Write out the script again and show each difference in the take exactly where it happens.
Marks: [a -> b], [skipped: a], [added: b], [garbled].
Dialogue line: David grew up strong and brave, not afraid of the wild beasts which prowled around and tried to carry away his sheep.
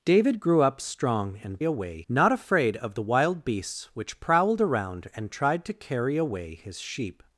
David grew up strong and [brave, -> away] not afraid of the wild beasts which prowled around and tried to carry away his sheep.